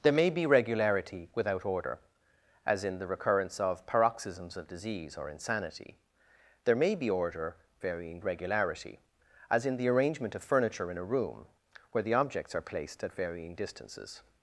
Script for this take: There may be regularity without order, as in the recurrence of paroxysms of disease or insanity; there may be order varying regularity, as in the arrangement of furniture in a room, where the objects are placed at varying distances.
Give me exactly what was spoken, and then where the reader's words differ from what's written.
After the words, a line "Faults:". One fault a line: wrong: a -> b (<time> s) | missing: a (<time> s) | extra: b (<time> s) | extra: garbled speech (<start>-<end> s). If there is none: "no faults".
There may be regularity without order, as in the recurrence of paroxysms of disease or insanity; there may be order varying regularity, as in the arrangement of furniture in a room, where the objects are placed at varying distances.
Faults:
no faults